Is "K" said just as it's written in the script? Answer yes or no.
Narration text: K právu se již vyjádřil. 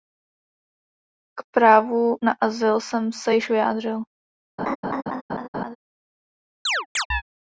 yes